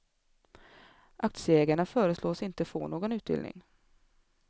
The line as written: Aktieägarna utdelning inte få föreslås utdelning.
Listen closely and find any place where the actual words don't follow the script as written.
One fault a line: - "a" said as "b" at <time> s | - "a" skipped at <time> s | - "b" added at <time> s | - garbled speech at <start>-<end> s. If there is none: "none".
- "utdelning" said as "föreslås" at 1.9 s
- "föreslås" said as "någon" at 2.9 s